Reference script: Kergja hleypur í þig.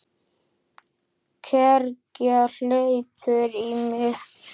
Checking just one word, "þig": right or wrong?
wrong